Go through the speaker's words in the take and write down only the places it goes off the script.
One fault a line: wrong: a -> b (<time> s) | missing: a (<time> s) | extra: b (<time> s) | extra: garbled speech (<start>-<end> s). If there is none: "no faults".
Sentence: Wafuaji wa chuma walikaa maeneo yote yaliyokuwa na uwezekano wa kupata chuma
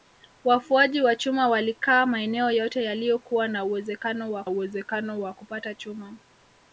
extra: uwezekano wa (4.5 s)